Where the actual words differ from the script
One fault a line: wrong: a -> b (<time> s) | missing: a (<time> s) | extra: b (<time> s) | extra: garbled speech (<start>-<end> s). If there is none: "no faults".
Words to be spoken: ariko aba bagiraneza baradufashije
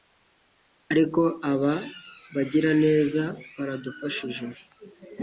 no faults